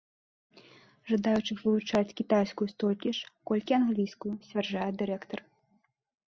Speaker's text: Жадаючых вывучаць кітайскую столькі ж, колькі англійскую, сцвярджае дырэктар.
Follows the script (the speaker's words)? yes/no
yes